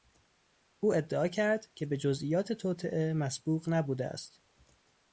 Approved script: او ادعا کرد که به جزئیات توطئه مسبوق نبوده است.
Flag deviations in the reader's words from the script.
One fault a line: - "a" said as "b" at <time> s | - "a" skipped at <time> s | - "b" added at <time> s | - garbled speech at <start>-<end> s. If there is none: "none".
none